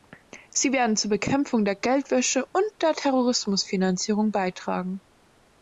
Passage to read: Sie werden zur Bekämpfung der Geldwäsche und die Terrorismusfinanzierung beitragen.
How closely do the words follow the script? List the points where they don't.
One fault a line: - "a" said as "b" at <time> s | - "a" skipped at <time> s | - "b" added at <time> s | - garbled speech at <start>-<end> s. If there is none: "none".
- "die" said as "der" at 2.8 s